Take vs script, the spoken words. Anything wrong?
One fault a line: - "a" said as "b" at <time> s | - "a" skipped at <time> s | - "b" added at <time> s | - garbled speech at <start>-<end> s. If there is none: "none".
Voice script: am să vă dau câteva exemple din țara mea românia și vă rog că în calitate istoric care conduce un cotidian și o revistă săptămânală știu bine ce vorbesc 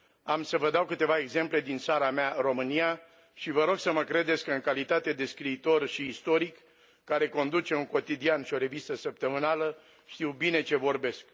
- "să mă credeți" added at 3.8 s
- "de scriitor și" added at 5.1 s